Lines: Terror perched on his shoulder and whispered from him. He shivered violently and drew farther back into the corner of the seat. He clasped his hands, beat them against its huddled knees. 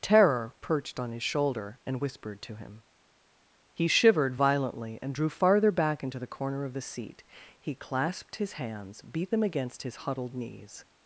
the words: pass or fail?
fail